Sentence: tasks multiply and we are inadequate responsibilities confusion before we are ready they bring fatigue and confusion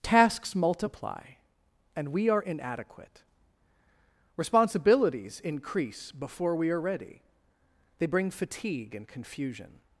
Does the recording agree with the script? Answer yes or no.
no